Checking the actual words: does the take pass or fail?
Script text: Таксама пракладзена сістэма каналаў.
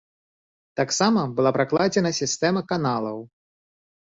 fail